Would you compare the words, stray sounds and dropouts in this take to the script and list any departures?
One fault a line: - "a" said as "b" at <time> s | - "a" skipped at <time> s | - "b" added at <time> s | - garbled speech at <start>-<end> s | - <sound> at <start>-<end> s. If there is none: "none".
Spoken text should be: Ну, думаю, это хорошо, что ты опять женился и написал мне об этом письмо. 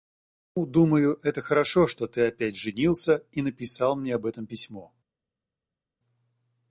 none